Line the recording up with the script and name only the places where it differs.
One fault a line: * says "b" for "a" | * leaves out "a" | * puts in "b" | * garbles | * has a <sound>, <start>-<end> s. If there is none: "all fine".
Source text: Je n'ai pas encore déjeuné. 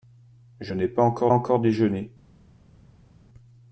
* puts in "encore"